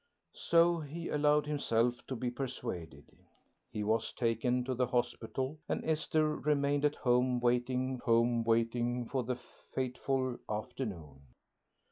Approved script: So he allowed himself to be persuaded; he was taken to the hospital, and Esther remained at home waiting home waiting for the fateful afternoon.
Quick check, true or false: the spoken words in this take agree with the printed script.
true